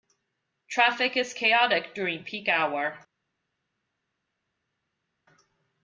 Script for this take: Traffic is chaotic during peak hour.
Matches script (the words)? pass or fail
pass